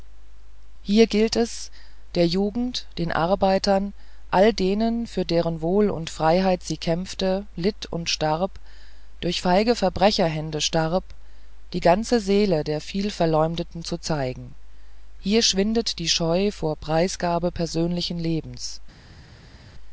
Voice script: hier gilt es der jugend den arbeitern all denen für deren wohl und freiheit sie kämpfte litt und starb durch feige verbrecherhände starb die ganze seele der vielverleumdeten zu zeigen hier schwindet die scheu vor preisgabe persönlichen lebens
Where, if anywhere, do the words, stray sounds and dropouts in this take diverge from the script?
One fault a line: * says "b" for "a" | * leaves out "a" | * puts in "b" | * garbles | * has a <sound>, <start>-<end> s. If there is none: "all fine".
all fine